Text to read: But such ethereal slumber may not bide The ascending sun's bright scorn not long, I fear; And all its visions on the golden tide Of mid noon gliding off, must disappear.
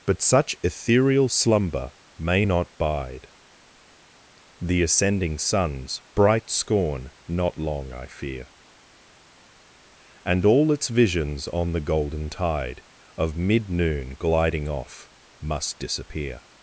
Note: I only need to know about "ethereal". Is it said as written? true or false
true